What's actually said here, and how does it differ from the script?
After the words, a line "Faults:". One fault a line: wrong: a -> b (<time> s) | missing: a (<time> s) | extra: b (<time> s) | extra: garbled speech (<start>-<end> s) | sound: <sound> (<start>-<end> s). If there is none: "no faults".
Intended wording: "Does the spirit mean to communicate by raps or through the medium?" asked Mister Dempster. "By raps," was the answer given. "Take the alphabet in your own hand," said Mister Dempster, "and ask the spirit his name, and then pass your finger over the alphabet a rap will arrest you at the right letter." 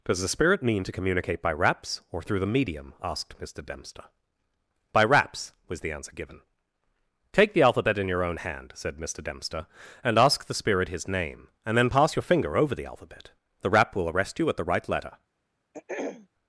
"Does the spirit mean to communicate by raps or through the medium?" asked Mister Dempster. "By raps," was the answer given. "Take the alphabet in your own hand," said Mister Dempster, "and ask the spirit his name, and then pass your finger over the alphabet the rap will arrest you at the right letter."
Faults:
wrong: a -> the (13.6 s)
sound: throat clearing (15.7-16.3 s)